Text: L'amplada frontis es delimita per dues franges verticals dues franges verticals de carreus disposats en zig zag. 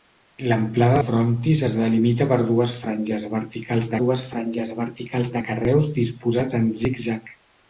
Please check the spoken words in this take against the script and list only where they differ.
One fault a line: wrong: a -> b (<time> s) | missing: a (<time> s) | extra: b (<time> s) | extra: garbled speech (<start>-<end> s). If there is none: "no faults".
no faults